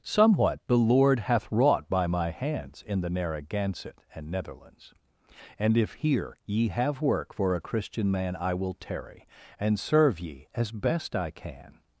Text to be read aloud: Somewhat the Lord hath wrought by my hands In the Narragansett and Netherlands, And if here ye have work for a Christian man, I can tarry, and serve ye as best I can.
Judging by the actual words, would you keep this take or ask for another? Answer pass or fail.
fail